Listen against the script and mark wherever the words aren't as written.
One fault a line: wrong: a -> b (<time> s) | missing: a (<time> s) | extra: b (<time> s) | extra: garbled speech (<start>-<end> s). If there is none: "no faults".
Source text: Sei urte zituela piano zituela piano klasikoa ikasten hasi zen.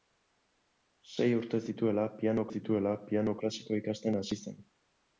no faults